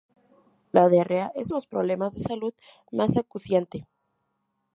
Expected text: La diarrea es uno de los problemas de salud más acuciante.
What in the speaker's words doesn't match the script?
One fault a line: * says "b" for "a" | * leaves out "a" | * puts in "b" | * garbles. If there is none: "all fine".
* leaves out "uno"